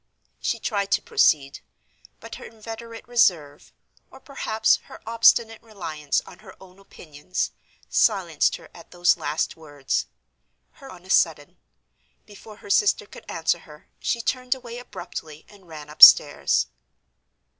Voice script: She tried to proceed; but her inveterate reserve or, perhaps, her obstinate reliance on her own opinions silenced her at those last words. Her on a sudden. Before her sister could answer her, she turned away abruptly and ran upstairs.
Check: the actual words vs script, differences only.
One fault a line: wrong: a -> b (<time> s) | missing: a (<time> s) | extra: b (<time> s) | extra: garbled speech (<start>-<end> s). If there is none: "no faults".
no faults